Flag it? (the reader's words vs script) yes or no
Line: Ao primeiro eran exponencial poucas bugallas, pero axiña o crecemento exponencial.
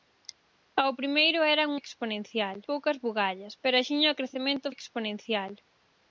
no